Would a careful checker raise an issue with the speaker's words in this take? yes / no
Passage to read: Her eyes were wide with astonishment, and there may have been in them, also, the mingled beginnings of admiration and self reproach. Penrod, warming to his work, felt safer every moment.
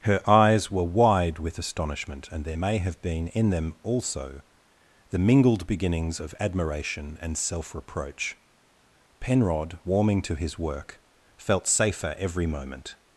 no